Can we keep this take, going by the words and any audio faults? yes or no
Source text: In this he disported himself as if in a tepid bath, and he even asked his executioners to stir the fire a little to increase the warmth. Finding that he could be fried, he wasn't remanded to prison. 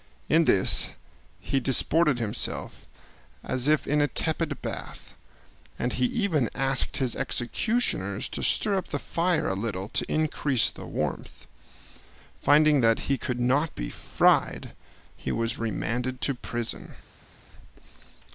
no